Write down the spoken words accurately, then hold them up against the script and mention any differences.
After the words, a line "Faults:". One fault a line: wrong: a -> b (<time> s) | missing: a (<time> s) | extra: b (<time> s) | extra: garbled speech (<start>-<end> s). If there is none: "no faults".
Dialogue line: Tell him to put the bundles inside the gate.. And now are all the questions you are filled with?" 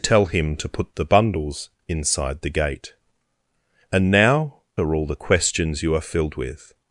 Tell him to put the bundles inside the gate.. And now are all the questions you are filled with?"
Faults:
no faults